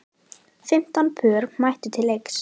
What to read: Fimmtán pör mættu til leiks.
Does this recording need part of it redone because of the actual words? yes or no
no